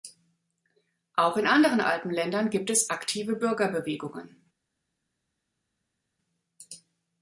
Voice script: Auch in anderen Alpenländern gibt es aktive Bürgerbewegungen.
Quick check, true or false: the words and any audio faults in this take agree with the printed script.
true